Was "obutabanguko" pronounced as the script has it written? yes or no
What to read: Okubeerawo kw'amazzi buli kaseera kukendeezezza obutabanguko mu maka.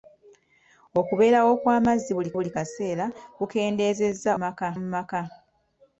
no